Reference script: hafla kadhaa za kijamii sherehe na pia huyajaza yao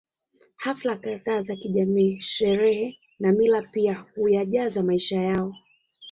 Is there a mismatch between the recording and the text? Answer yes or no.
yes